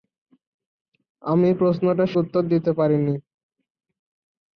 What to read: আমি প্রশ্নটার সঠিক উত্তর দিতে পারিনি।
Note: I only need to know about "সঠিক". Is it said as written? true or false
false